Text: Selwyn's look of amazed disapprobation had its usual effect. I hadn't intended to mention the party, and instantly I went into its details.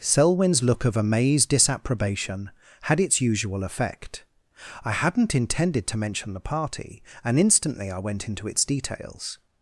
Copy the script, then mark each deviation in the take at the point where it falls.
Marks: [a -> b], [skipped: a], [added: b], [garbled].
Selwyn's look of amazed disapprobation had its usual effect. I hadn't intended to mention the party, and instantly I went into its details.